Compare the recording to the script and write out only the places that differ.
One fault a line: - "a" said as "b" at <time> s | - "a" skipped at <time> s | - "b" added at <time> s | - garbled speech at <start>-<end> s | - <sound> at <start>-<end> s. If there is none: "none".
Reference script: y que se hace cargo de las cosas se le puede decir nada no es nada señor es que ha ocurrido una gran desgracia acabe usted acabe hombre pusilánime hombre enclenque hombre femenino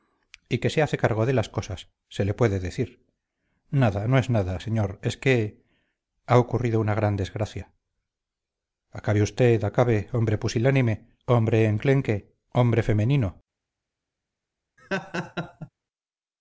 - laugh at 14.8-15.7 s